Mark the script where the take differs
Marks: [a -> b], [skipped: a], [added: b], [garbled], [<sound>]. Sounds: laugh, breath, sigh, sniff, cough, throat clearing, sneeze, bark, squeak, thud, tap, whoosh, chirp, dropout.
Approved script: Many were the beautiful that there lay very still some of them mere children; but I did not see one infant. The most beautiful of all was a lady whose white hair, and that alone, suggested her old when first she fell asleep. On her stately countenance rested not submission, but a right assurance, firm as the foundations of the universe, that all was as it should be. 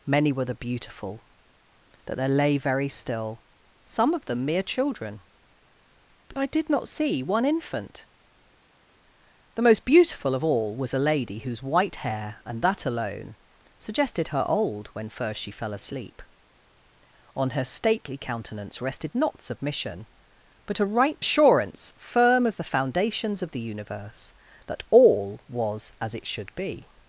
Many were the beautiful that there lay very still some of them mere children; but I did not see one infant. The most beautiful of all was a lady whose white hair, and that alone, suggested her old when first she fell asleep. On her stately countenance rested not submission, but a right assurance, firm as the foundations of the universe, that all was as it should be.